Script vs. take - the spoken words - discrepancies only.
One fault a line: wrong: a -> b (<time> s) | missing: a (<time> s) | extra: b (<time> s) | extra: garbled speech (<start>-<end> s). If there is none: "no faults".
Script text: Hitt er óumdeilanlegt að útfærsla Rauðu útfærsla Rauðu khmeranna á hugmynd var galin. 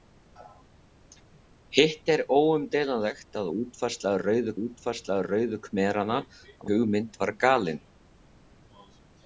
no faults